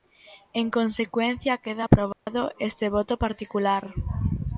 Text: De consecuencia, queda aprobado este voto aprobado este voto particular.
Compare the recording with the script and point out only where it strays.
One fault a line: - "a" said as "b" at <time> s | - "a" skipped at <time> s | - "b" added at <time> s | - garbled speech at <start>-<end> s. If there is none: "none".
- "De" said as "En" at 0.5 s
- "aprobado este voto" skipped at 3.2 s